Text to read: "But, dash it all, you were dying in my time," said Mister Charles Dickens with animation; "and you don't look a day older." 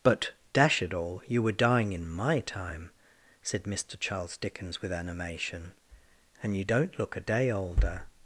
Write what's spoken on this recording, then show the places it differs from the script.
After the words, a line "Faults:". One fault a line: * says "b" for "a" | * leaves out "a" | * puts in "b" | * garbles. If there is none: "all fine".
"But, dash it all, you were dying in my time," said Mister Charles Dickens with animation; "and you don't look a day older."
Faults:
all fine